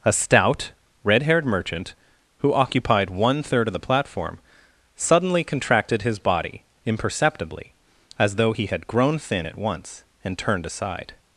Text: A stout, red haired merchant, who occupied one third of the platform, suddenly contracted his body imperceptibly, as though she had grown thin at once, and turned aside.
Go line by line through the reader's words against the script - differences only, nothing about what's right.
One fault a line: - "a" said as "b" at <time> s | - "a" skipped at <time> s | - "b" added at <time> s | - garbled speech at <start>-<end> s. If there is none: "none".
- "she" said as "he" at 8.5 s